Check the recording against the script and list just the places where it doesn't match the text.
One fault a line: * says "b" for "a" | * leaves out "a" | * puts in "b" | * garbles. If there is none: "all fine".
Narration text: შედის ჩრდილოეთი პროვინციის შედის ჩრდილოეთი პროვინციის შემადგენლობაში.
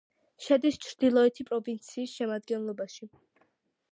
* leaves out "შედის ჩრდილოეთი პროვინციის"